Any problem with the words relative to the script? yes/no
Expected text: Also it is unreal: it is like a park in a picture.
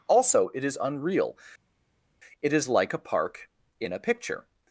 no